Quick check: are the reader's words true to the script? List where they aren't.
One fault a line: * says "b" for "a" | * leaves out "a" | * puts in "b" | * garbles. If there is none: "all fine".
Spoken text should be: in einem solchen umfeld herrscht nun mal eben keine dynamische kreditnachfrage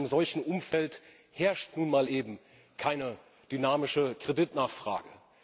all fine